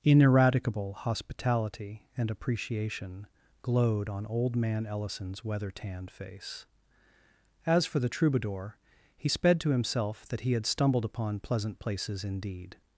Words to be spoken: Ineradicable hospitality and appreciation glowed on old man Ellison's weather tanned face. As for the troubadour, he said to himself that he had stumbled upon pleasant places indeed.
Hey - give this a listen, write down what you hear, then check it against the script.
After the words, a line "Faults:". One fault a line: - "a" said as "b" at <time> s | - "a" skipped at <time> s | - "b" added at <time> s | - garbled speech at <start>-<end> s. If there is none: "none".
Ineradicable hospitality and appreciation glowed on old man Ellison's weather tanned face. As for the troubadour, he sped to himself that he had stumbled upon pleasant places indeed.
Faults:
- "said" said as "sped" at 9.3 s